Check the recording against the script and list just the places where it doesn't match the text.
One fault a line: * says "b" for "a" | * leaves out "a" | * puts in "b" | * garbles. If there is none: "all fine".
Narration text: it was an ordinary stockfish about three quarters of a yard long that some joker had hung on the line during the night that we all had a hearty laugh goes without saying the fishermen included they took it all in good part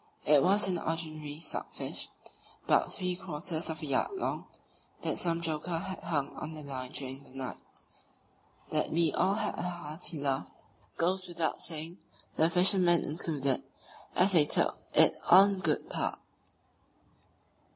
* puts in "as"